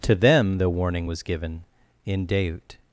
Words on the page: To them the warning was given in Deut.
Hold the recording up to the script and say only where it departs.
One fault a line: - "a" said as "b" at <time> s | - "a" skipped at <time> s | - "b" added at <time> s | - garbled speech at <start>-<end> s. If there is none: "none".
none